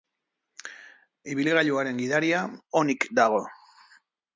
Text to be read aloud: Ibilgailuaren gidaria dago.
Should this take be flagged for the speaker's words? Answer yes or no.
yes